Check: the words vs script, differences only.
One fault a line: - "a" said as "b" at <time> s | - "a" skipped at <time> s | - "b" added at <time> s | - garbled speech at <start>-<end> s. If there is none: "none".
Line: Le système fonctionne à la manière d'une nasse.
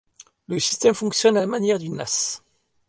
none